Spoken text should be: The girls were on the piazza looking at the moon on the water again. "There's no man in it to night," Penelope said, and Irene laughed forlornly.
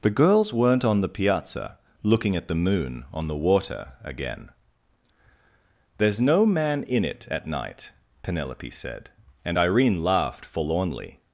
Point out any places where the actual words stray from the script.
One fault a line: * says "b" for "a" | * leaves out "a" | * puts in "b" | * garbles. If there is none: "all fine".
* says "weren't" for "were"
* says "at" for "to"